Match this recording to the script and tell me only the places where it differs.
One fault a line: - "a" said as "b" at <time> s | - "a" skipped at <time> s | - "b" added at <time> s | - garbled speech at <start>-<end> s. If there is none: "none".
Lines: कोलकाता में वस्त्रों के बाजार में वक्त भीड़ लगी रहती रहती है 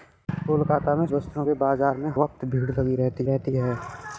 none